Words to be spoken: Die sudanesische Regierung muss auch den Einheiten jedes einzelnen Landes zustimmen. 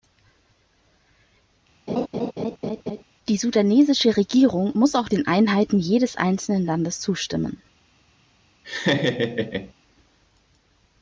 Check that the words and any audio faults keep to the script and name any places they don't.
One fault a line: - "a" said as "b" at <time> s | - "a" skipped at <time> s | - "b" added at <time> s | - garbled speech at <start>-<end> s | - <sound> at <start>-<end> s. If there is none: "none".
- laugh at 1.9-3.0 s
- laugh at 8.6-9.7 s